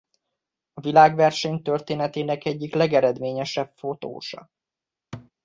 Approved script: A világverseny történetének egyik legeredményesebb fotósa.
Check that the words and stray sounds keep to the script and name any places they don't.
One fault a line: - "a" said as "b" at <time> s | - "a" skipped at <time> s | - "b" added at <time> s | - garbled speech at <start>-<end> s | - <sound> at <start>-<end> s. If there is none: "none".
- thud at 5.1-5.3 s